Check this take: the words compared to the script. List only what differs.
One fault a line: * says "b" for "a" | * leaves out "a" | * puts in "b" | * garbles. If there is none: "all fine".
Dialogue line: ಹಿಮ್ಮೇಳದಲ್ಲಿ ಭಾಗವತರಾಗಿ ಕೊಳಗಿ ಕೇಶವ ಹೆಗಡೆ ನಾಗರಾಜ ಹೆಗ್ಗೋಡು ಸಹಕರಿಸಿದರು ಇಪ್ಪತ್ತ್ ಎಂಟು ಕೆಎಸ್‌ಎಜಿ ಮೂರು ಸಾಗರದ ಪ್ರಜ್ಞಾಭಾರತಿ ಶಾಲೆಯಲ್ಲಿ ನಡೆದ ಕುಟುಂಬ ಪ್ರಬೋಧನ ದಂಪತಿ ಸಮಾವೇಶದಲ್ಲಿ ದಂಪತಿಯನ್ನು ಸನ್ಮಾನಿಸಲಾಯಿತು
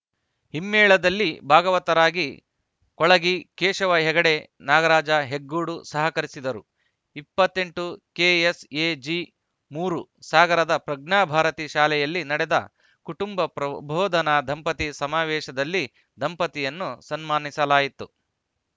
all fine